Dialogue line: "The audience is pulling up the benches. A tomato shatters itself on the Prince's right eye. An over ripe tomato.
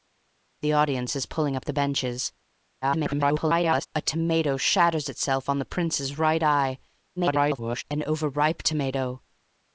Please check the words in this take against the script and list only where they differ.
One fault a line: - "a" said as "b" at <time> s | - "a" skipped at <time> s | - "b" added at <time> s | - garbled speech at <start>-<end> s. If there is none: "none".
- garbled speech at 2.8-3.9 s
- garbled speech at 7.2-7.8 s